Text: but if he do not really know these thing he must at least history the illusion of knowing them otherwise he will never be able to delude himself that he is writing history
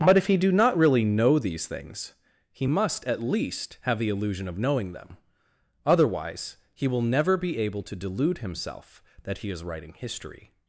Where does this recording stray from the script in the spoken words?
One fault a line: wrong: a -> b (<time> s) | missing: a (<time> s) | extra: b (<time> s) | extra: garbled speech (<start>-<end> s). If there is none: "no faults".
wrong: thing -> things (1.7 s)
wrong: history -> have (3.8 s)